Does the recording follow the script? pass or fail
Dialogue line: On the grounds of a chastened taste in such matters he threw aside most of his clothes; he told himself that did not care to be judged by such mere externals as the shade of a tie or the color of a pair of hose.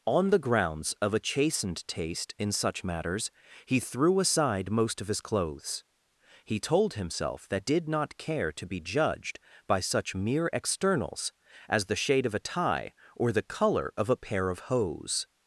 pass